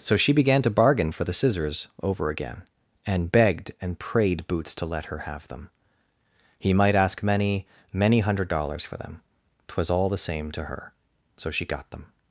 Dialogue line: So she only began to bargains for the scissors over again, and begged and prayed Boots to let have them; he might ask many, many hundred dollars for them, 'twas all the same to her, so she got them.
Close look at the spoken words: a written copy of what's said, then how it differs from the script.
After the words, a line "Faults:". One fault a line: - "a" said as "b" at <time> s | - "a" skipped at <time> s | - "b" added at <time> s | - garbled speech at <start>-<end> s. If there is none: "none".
So she began to bargain for the scissors over again, and begged and prayed Boots to let her have them; he might ask many, many hundred dollars for them, 'twas all the same to her, so she got them.
Faults:
- "only" skipped at 0.3 s
- "bargains" said as "bargain" at 0.7 s
- "her" added at 5.0 s